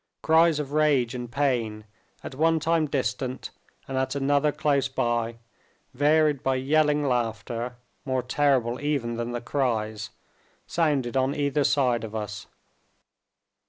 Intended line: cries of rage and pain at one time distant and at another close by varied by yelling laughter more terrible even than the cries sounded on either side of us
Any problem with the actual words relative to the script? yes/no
no